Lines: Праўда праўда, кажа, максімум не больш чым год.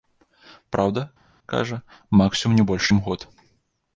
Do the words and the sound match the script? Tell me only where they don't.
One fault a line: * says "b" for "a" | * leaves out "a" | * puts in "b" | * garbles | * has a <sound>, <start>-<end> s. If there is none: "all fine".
* leaves out "праўда"